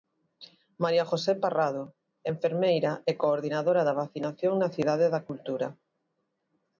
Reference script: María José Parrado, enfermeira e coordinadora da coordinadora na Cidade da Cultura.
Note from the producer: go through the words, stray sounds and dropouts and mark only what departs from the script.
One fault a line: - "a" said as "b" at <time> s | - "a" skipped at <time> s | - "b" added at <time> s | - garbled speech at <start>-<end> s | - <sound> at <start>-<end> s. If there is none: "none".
- "coordinadora" said as "vacinación" at 4.0 s